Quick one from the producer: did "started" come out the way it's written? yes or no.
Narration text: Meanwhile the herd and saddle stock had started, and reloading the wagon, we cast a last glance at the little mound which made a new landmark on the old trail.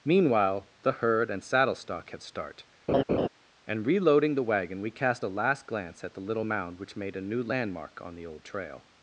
no